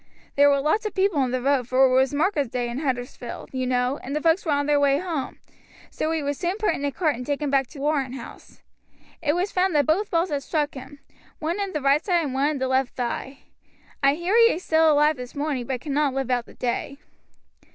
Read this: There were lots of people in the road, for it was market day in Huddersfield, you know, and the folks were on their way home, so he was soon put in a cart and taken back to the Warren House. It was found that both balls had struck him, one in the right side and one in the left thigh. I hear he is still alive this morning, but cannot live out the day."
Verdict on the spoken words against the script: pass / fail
fail